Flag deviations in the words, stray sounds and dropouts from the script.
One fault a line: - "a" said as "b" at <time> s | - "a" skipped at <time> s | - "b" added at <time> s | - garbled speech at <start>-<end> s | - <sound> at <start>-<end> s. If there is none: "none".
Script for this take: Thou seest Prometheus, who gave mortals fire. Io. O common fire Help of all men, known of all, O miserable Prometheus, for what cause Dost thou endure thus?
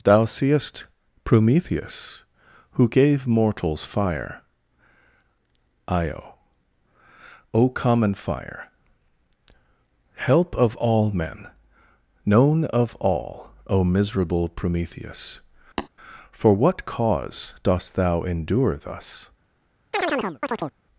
- tap at 15.8-15.9 s
- chirp at 19.9-20.7 s